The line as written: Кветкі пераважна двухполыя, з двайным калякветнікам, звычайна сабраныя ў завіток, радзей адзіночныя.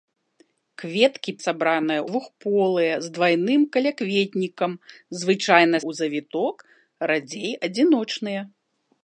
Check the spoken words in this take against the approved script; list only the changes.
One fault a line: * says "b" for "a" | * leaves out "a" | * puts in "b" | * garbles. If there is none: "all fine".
* says "сабраныя" for "пераважна"
* leaves out "сабраныя"